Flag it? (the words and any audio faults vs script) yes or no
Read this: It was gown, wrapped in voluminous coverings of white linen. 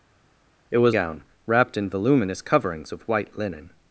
no